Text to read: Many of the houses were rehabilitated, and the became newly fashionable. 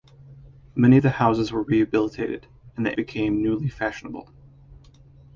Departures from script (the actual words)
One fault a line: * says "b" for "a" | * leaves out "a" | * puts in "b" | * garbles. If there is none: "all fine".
all fine